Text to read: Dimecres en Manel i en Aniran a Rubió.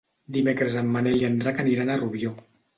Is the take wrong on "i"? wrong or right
right